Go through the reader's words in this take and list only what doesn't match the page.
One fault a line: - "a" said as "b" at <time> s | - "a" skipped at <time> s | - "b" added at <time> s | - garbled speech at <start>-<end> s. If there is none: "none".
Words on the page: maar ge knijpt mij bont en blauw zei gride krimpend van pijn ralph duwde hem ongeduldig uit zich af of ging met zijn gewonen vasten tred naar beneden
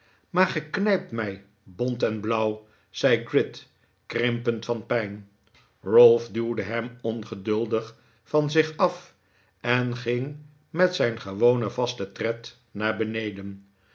- "uit" said as "van" at 8.2 s
- "of" said as "en" at 9.6 s